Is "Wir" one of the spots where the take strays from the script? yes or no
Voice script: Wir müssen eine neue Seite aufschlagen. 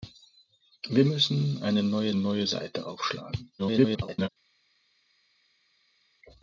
no